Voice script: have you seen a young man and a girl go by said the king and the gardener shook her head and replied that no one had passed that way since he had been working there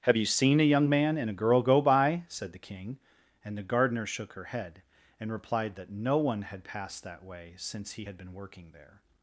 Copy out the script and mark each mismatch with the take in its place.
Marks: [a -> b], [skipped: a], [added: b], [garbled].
have you seen a young man and a girl go by said the king and the gardener shook her head and replied that no one had passed that way since he had been working there